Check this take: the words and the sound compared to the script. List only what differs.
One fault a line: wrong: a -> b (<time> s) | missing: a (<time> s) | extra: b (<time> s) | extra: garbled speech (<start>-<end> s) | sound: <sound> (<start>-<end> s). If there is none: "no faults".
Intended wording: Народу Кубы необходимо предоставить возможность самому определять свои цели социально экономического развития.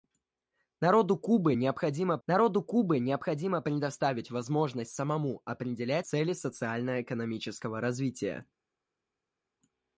extra: народу Кубы необходимо (2.3 s)
missing: свои (6.1 s)